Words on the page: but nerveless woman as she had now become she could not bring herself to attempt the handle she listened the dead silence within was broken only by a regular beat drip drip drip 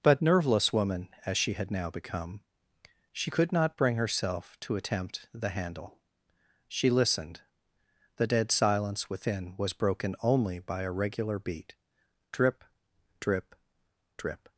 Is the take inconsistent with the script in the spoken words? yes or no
no